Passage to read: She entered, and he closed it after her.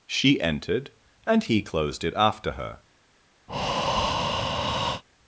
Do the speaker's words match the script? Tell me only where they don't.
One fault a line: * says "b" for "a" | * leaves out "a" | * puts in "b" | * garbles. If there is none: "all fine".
all fine